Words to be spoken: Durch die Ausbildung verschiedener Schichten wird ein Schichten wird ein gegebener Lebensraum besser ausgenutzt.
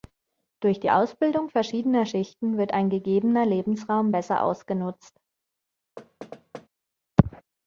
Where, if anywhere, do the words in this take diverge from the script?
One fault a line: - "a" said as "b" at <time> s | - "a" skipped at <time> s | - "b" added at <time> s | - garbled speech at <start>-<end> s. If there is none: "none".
- "Schichten wird ein" skipped at 2.9 s